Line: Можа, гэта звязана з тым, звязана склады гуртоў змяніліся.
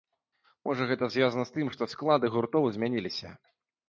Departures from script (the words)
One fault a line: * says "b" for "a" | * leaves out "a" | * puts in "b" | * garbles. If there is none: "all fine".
* says "што" for "звязана"